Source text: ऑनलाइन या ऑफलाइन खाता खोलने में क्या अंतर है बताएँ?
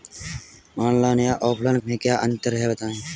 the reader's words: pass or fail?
fail